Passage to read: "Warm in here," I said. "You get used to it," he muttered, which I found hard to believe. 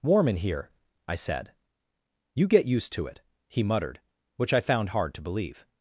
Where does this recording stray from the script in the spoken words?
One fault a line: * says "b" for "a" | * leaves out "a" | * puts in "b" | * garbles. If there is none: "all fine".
all fine